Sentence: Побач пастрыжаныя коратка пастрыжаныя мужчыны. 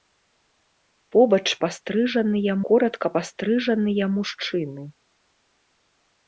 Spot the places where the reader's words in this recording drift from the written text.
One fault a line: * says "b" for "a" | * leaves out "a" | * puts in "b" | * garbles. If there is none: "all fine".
all fine